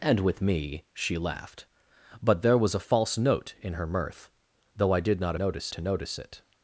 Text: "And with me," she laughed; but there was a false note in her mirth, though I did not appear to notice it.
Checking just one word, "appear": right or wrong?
wrong